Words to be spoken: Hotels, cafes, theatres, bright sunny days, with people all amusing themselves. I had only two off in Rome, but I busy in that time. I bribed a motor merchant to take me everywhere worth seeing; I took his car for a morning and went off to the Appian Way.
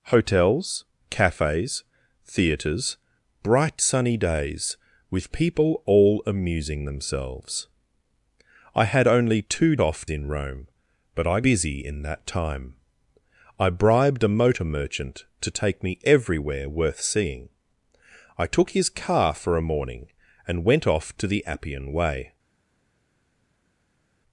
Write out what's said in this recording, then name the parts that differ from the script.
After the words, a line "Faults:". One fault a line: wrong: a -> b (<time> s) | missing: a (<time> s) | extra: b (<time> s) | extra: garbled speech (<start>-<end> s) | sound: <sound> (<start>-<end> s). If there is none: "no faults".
Hotels, cafes, theatres, bright sunny days, with people all amusing themselves. I had only two off in Rome, but I busy in that time. I bribed a motor merchant to take me everywhere worth seeing; I took his car for a morning and went off to the Appian Way.
Faults:
no faults